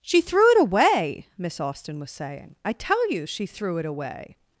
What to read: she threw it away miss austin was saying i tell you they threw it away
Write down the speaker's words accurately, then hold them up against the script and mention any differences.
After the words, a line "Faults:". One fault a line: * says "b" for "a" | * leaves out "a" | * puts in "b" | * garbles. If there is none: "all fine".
she threw it away miss austin was saying i tell you she threw it away
Faults:
* says "she" for "they"